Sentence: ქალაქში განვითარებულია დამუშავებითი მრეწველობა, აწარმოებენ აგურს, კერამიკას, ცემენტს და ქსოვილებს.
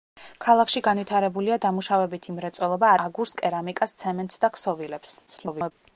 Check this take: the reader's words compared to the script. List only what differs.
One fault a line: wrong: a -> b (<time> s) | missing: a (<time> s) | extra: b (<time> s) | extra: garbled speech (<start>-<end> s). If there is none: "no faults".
missing: აწარმოებენ (2.9 s)
extra: garbled speech (5.3-5.7 s)